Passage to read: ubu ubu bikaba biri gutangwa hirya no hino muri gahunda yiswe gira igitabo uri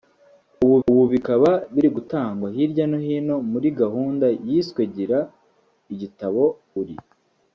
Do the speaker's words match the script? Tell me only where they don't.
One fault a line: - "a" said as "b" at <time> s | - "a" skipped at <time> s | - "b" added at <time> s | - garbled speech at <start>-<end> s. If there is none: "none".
none